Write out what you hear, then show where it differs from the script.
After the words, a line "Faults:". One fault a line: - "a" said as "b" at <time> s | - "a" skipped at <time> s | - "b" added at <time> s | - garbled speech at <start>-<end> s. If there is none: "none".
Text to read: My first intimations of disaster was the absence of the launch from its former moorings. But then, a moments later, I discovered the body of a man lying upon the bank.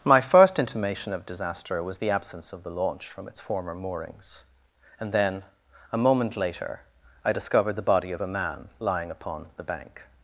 My first intimation of disaster was the absence of the launch from its former moorings. And then, a moment later, I discovered the body of a man lying upon the bank.
Faults:
- "intimations" said as "intimation" at 0.6 s
- "But" said as "And" at 5.0 s
- "moments" said as "moment" at 6.0 s